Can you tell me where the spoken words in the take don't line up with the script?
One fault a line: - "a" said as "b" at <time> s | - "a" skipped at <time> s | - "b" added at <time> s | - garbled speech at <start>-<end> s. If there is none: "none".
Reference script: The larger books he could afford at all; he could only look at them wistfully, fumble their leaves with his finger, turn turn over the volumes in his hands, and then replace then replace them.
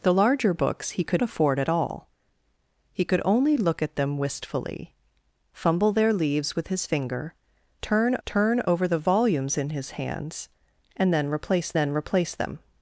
none